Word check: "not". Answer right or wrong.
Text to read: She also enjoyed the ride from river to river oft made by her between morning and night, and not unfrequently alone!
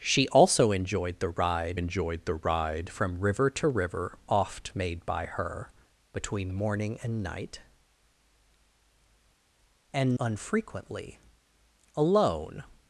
wrong